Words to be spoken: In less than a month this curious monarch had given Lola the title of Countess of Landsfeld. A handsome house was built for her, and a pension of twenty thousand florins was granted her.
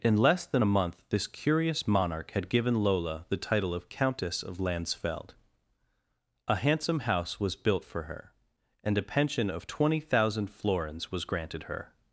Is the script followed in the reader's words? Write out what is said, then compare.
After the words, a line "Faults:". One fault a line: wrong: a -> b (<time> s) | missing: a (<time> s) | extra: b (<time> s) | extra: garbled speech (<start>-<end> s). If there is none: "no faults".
In less than a month this curious monarch had given Lola the title of Countess of Landsfeld. A handsome house was built for her, and a pension of twenty thousand florins was granted her.
Faults:
no faults